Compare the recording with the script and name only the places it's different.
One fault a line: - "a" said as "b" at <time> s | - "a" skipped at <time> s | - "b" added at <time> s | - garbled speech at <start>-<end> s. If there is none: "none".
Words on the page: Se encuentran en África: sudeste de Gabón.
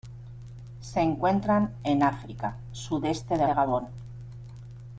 - "de" added at 3.4 s